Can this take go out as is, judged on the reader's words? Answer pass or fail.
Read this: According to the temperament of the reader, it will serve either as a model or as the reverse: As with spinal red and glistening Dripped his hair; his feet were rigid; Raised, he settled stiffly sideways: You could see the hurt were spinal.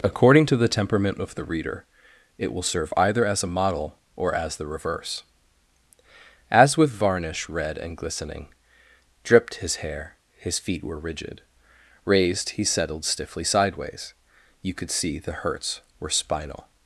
fail